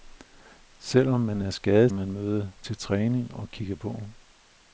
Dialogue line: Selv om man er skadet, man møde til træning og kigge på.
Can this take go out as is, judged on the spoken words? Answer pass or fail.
pass